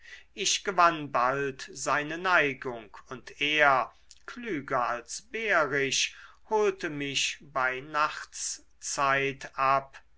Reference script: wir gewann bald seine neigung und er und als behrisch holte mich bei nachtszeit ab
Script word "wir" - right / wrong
wrong